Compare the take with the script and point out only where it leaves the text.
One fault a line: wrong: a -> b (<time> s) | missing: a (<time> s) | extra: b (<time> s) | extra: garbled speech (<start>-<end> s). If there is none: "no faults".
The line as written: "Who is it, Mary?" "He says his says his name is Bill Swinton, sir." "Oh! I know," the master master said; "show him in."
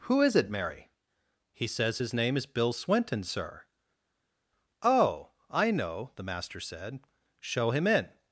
missing: says his (2.1 s)
missing: master (6.6 s)